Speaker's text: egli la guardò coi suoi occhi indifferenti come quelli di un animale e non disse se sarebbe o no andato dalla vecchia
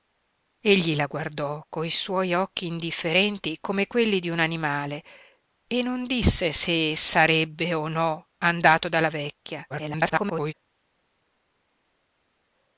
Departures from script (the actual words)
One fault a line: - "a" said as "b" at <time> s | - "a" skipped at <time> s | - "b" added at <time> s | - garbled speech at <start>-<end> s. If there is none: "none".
- garbled speech at 9.7-10.5 s